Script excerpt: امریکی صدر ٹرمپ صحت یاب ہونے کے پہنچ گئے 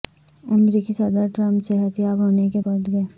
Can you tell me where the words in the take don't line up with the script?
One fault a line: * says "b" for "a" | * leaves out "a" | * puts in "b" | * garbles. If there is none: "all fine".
all fine